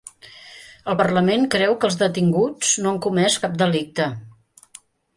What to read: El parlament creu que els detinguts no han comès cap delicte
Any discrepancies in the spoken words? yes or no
no